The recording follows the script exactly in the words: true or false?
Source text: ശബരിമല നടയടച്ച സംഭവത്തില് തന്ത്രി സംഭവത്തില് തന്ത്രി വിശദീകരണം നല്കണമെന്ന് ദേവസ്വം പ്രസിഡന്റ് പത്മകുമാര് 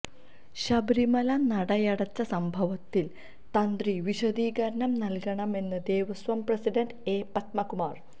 false